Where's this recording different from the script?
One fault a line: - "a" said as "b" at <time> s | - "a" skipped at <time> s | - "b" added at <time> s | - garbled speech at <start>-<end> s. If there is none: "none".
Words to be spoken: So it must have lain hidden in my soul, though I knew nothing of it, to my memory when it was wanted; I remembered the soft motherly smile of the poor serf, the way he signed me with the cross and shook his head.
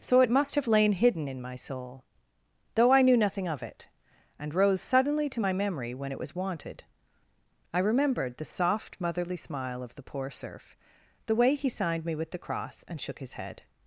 - "and rose suddenly" added at 4.4 s